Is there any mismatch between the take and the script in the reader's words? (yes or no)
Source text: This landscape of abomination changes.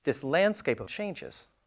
yes